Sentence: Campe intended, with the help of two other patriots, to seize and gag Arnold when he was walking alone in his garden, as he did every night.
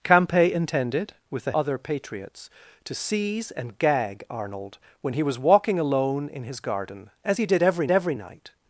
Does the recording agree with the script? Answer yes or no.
no